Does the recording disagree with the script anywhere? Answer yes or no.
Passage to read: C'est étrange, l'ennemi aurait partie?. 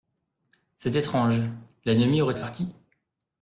no